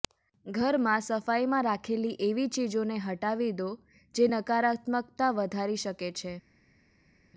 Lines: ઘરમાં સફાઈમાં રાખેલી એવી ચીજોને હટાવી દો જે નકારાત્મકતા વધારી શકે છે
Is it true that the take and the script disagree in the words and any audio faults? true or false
false